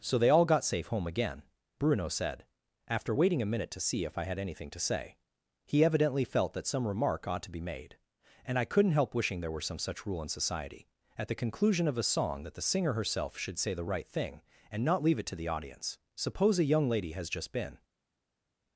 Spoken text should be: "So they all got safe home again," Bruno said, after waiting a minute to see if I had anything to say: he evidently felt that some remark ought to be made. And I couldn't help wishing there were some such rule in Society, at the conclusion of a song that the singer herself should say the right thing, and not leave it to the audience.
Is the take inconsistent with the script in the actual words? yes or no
yes